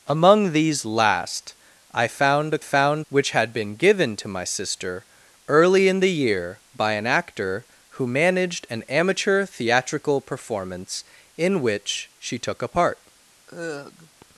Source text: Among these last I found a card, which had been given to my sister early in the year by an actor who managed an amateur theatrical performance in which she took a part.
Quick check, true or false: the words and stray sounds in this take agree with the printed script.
false